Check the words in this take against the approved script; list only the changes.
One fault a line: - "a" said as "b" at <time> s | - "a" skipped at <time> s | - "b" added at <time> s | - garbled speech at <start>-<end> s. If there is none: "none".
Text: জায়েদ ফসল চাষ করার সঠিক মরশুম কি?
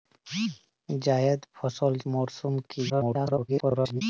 - "চাষ করার সঠিক" skipped at 1.9 s
- garbled speech at 2.9-4.0 s